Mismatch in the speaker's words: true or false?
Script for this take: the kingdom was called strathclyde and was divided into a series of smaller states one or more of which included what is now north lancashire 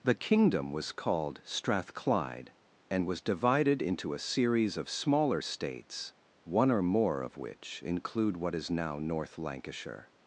true